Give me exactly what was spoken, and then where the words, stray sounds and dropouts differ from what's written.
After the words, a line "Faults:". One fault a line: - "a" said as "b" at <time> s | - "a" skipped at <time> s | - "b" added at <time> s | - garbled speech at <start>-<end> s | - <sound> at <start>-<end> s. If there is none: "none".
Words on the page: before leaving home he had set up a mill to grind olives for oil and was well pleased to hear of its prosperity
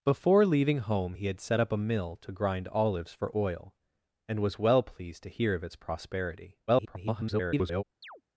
before leaving home he had set up a mill to grind olives for oil and was well pleased to hear of its prosperity [garbled]
Faults:
- garbled speech at 6.7-7.8 s
- chirp at 8.0-8.2 s